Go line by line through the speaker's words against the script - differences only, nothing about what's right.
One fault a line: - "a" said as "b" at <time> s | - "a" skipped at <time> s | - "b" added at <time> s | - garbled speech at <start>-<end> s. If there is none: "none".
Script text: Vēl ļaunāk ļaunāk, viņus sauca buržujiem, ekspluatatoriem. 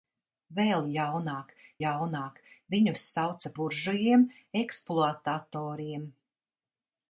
none